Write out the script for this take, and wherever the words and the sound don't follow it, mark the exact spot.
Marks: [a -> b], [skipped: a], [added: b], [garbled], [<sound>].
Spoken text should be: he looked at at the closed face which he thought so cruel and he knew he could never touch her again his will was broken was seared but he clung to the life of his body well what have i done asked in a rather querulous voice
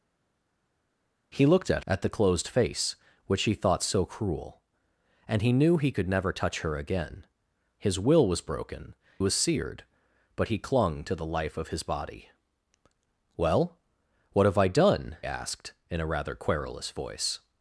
he looked at at the closed face which he thought so cruel and he knew he could never touch her again his will was broken was seared but he clung to the life of his body well what have i done asked in a rather querulous voice